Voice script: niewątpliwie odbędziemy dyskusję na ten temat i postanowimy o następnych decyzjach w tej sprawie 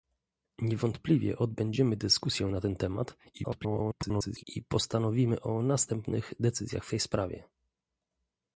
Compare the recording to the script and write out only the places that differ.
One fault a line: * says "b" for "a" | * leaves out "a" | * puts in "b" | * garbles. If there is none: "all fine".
* garbles